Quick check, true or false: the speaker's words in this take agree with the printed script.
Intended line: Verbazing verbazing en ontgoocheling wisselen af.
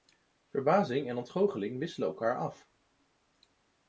false